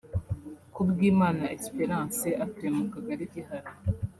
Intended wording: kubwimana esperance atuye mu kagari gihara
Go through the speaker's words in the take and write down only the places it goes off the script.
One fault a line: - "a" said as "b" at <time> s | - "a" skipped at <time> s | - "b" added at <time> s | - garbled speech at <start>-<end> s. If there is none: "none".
none